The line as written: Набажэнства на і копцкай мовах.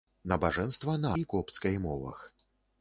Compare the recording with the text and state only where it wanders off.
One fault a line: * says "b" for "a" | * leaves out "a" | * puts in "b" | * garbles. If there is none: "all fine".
all fine